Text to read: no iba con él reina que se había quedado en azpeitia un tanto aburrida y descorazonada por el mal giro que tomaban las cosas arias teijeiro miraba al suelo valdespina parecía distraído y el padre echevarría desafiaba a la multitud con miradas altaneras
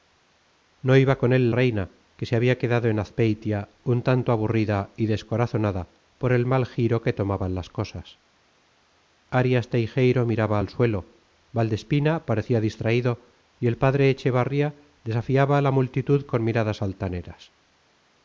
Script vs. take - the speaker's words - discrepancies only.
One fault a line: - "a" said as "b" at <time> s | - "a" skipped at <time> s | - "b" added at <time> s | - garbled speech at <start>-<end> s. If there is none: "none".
none